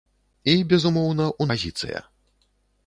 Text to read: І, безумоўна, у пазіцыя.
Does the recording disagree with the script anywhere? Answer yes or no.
no